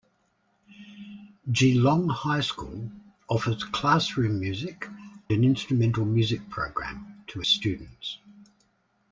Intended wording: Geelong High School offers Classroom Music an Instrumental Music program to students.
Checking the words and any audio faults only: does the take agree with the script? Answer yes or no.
yes